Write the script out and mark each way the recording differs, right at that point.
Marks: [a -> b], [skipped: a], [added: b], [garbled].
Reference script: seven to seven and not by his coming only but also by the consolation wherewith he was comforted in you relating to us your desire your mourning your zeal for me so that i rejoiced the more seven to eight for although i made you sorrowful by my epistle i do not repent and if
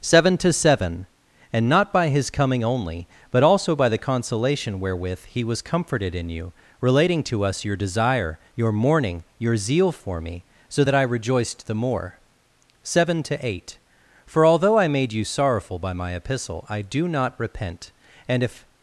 seven to seven and not by his coming only but also by the consolation wherewith he was comforted in you relating to us your desire your mourning your zeal for me so that i rejoiced the more seven to eight for although i made you sorrowful by my epistle i do not repent and if